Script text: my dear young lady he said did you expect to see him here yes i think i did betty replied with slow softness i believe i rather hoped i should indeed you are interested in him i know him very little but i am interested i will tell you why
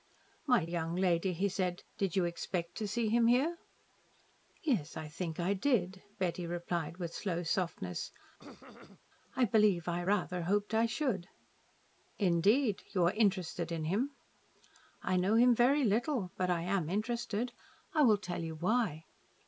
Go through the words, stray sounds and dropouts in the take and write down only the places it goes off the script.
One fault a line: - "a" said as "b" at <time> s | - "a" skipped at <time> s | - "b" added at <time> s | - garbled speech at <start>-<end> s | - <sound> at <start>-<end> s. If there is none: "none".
- "dear" skipped at 0.7 s
- throat clearing at 8.4-9.0 s